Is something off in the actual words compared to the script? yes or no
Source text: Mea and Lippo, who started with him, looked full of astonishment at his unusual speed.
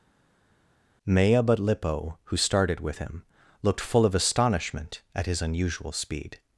yes